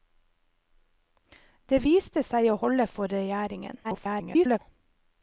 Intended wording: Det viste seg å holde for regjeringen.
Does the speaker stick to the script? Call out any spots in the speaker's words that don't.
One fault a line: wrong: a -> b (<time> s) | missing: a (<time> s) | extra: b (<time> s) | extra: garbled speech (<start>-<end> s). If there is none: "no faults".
extra: garbled speech (3.8-4.6 s)